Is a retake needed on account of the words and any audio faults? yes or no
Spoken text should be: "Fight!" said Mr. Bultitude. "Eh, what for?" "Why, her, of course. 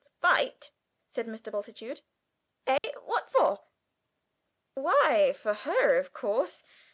yes